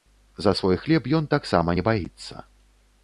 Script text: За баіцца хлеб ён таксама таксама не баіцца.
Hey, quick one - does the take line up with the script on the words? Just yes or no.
no